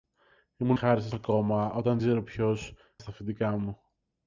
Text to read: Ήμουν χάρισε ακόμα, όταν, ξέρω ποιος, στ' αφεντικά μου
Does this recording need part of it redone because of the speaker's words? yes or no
no